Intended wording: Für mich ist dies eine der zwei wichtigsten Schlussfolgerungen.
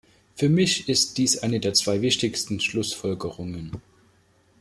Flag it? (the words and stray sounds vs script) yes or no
no